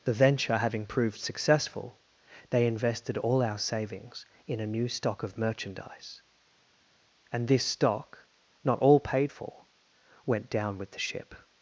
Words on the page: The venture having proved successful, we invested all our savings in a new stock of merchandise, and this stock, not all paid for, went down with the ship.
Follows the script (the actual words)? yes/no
no